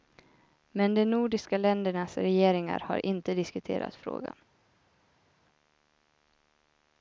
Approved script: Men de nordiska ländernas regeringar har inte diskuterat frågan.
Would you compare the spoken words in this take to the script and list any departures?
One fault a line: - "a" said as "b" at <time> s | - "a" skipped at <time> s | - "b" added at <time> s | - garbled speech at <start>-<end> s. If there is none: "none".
none